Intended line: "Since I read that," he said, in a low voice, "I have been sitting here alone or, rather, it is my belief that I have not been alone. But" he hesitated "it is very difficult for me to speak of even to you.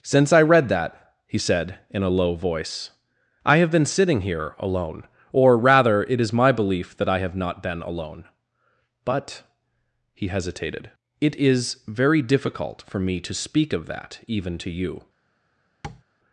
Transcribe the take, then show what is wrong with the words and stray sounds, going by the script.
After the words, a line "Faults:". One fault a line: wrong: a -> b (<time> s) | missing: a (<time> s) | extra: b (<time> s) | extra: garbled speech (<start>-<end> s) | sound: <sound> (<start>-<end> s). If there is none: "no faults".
"Since I read that," he said, in a low voice, "I have been sitting here alone or, rather, it is my belief that I have not been alone. But" he hesitated "it is very difficult for me to speak of that even to you.
Faults:
extra: that (13.9 s)
sound: tap (15.8-16.0 s)